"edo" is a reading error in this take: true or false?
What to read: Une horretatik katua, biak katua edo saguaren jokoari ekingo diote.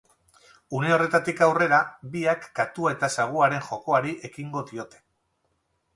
true